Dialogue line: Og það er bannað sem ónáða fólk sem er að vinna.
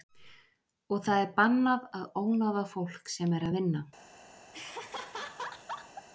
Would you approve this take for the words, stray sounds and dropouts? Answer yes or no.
no